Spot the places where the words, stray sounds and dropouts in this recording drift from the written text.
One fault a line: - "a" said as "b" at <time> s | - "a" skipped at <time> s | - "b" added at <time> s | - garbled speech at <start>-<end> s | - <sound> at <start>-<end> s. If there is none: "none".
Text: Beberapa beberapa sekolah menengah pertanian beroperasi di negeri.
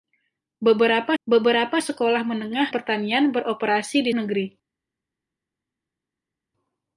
none